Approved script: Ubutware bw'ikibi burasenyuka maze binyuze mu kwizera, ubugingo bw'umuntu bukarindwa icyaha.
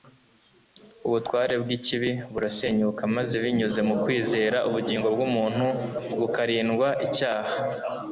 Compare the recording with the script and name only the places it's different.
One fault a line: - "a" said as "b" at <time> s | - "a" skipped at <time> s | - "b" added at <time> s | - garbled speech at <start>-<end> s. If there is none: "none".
none